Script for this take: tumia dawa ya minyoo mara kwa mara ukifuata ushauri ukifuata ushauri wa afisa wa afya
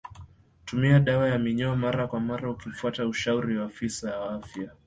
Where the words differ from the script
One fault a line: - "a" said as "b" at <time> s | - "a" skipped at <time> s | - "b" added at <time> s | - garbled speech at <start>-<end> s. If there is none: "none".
- "ukifuata ushauri" skipped at 3.6 s